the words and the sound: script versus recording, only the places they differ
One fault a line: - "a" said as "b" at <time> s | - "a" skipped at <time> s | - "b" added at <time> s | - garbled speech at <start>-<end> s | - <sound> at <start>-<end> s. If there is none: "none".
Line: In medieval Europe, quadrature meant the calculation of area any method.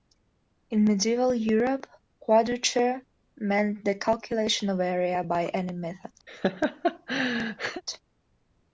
- "by" added at 5.2 s
- laugh at 6.3-7.8 s